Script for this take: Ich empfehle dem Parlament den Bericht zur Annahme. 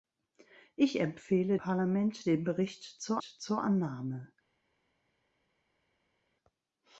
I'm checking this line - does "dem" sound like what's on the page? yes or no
no